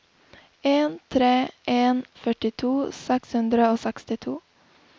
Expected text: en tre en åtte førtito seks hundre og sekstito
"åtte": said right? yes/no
no